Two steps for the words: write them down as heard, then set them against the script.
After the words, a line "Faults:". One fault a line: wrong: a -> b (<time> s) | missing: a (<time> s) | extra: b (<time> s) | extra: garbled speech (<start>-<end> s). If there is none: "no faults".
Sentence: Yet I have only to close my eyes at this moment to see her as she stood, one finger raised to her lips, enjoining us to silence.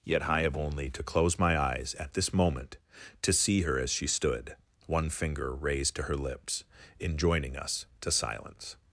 Yet I have only to close my eyes at this moment to see her as she stood, one finger raised to her lips, enjoining us to silence.
Faults:
no faults